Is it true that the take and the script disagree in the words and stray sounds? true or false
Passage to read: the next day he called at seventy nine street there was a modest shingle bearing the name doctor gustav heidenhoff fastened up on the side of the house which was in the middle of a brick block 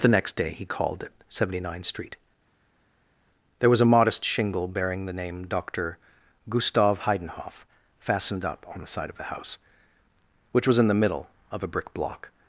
false